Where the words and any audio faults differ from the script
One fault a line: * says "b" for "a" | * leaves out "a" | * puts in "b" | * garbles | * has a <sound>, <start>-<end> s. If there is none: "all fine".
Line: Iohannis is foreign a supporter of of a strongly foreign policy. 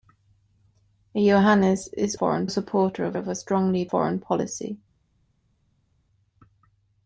all fine